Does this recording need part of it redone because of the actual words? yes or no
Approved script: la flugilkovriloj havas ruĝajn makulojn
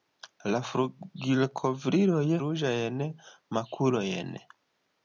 yes